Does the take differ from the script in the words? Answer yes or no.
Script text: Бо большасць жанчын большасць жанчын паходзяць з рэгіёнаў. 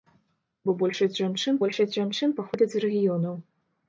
no